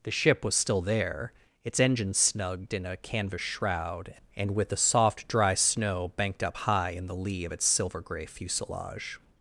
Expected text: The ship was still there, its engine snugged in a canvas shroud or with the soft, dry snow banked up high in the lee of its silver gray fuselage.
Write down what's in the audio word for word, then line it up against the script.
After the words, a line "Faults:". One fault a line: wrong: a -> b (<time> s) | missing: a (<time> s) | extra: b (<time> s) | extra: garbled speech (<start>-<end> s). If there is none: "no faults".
The ship was still there, its engine snugged in a canvas shroud and with the soft, dry snow banked up high in the lee of its silver gray fuselage.
Faults:
wrong: or -> and (4.3 s)